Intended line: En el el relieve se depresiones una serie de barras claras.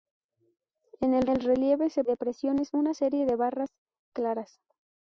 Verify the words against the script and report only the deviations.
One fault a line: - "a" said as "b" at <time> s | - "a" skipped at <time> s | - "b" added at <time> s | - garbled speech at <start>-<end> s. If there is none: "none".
none